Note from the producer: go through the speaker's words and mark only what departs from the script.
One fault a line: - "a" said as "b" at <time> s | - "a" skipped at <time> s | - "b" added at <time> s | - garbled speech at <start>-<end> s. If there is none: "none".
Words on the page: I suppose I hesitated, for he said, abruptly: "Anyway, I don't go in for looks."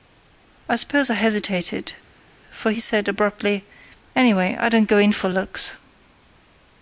none